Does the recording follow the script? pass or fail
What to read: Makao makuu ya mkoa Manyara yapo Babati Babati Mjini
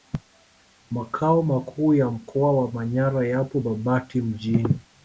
fail